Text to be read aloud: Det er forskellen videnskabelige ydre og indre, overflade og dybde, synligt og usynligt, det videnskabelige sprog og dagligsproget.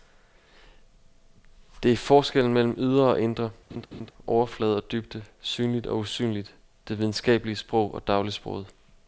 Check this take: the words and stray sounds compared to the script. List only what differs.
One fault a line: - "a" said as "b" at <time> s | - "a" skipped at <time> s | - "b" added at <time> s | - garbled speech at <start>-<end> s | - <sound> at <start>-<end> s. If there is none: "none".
- "videnskabelige" said as "mellem" at 2.5 s
- laugh at 3.7-4.1 s